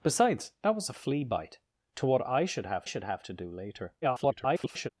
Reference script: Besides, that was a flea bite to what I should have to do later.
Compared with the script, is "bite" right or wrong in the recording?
right